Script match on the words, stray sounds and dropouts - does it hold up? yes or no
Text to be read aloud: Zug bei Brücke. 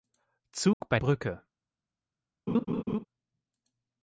no